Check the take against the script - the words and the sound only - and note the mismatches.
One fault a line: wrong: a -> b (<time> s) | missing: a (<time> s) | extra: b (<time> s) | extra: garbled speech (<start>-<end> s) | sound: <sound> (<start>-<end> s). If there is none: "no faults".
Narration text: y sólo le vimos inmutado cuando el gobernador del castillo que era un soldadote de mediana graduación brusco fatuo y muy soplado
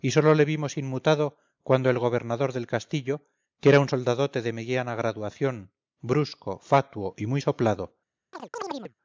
sound: chirp (8.3-8.9 s)